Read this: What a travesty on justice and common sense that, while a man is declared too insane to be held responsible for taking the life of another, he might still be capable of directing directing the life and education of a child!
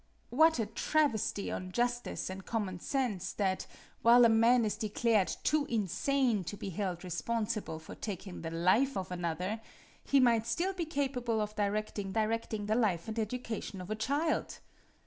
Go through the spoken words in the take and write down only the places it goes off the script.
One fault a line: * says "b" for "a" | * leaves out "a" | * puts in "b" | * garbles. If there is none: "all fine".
all fine